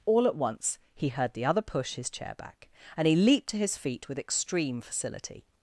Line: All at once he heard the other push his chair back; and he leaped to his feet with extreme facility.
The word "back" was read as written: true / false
true